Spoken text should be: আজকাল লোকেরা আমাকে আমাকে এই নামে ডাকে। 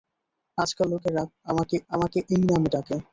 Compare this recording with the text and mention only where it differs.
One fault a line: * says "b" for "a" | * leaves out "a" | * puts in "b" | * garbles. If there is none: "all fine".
all fine